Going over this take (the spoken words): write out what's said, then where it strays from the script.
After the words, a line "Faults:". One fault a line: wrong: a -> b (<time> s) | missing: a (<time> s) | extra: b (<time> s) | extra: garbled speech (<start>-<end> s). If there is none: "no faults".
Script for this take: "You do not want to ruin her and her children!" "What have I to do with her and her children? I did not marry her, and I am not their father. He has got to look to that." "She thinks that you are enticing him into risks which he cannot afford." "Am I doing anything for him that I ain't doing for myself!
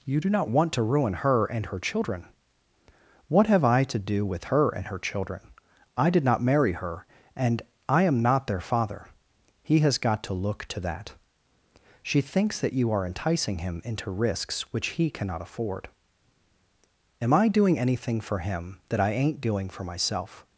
"You do not want to ruin her and her children!" "What have I to do with her and her children? I did not marry her, and I am not their father. He has got to look to that." "She thinks that you are enticing him into risks which he cannot afford." "Am I doing anything for him that I ain't doing for myself!
Faults:
no faults